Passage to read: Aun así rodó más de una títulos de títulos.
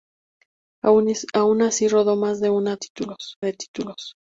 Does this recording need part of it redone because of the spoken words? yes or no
no